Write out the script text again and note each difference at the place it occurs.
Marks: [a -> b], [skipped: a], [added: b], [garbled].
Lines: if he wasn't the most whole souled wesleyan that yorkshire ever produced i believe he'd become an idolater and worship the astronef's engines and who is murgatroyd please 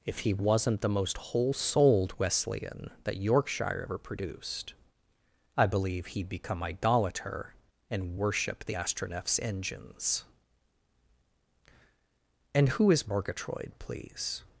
if he wasn't the most whole souled wesleyan that yorkshire ever produced i believe he'd become [skipped: an] idolater and worship the astronef's engines and who is murgatroyd please